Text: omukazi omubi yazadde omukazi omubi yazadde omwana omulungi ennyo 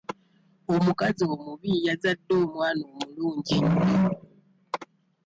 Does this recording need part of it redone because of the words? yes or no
yes